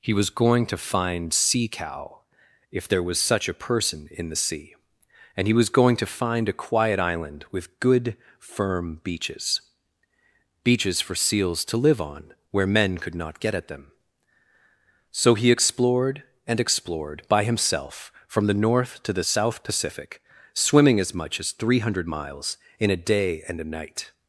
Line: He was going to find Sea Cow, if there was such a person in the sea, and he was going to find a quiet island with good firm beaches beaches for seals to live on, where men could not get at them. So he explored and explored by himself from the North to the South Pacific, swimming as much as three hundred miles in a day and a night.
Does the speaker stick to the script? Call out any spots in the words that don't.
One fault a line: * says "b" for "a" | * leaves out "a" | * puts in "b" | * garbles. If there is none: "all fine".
all fine